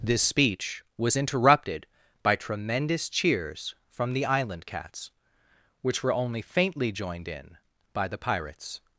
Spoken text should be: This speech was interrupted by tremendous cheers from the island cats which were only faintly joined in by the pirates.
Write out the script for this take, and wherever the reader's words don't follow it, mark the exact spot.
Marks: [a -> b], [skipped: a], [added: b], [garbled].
This speech was interrupted by tremendous cheers from the island cats which were only faintly joined in by the pirates.